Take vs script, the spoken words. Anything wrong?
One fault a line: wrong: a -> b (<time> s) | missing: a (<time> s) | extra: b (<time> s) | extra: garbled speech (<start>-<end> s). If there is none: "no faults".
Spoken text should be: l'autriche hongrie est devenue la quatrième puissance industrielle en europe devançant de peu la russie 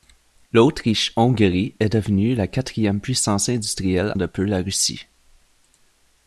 missing: en europe devançant (4.1 s)